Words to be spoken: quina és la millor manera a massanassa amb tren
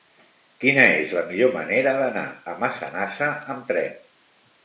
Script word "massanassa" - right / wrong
right